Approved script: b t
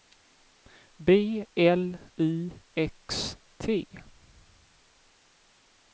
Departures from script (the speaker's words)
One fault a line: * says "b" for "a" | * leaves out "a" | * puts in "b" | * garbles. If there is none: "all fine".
* puts in "l i x"